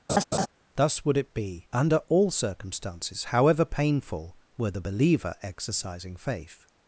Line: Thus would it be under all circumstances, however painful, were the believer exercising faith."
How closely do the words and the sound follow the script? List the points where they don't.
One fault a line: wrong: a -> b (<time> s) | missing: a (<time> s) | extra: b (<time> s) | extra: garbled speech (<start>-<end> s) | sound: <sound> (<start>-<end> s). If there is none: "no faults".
sound: laugh (0.1-0.5 s)